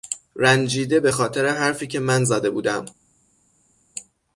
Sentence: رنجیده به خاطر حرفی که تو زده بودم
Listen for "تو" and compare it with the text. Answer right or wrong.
wrong